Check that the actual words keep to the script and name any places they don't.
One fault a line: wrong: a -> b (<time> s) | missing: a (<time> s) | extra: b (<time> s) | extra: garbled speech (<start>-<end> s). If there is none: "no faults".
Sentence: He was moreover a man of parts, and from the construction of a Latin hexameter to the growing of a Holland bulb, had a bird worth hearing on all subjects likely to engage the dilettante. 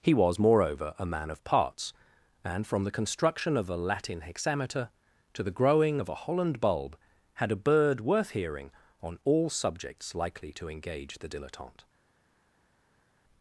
no faults